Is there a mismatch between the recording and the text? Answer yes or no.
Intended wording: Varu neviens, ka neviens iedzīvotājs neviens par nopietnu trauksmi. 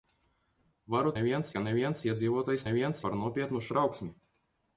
no